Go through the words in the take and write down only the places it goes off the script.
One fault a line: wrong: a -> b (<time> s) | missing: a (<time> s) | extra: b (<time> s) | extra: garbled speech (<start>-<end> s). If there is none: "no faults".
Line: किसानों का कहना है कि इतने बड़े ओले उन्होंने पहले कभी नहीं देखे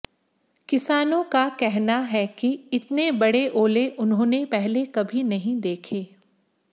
no faults